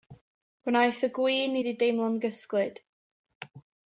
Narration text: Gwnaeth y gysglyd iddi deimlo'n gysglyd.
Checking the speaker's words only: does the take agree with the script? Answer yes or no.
no